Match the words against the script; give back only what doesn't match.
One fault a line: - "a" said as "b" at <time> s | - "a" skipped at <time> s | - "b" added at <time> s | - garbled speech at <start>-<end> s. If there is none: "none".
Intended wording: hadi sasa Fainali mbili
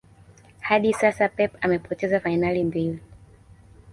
- "Pep amepoteza" added at 1.3 s